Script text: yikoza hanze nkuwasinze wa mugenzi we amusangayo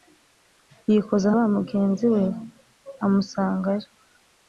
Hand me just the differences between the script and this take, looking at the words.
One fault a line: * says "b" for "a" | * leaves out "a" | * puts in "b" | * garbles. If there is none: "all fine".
* leaves out "hanze nkuwasinze"